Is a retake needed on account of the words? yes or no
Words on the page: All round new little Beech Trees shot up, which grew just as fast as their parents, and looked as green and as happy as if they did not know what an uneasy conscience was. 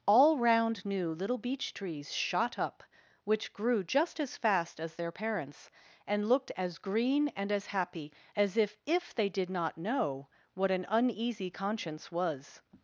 yes